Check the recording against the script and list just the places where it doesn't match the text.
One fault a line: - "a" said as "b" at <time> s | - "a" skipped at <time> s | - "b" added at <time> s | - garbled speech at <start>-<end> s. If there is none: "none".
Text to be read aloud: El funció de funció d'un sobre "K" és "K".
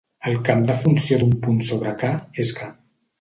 - "funció" said as "camp" at 0.5 s
- "punt" added at 1.5 s